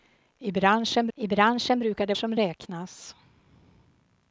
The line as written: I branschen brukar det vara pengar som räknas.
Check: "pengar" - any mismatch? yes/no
yes